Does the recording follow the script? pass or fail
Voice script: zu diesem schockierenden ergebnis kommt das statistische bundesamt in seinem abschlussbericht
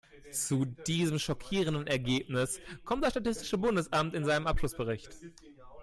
pass